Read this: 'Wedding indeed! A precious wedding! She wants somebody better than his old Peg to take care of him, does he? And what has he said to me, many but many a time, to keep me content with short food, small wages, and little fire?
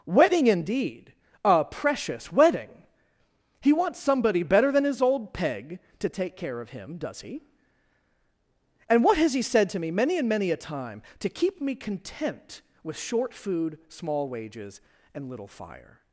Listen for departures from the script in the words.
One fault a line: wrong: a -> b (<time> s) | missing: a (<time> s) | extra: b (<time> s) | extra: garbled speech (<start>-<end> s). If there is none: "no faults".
wrong: She -> He (3.6 s)
wrong: but -> and (10.2 s)